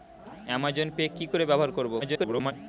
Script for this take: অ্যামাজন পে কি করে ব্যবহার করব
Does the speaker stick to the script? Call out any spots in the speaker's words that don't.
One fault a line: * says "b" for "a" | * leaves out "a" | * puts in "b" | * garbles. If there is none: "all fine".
* garbles